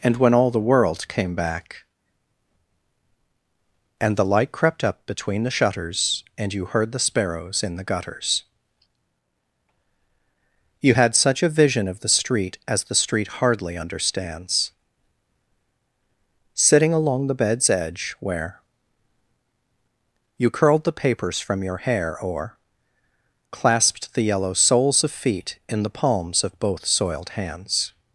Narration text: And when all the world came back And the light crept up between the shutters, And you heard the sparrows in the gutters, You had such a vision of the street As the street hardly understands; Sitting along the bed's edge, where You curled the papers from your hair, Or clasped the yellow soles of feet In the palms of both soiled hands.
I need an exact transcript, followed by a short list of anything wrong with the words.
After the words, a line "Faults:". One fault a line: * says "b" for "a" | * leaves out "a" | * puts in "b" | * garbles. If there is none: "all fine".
And when all the world came back And the light crept up between the shutters, And you heard the sparrows in the gutters, You had such a vision of the street As the street hardly understands; Sitting along the bed's edge, where You curled the papers from your hair, Or clasped the yellow soles of feet In the palms of both soiled hands.
Faults:
all fine